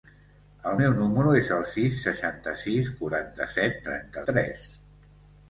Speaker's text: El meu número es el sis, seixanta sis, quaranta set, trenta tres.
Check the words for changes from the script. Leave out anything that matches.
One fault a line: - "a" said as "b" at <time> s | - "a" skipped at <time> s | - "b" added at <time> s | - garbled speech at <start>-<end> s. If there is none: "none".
none